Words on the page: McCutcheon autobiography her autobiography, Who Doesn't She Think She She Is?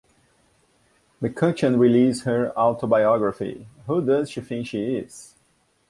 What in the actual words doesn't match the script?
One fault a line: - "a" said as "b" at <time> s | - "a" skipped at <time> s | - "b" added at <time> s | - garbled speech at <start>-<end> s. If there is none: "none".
- "autobiography" said as "released" at 1.8 s
- "Doesn't" said as "Does" at 4.0 s
- "She" skipped at 4.9 s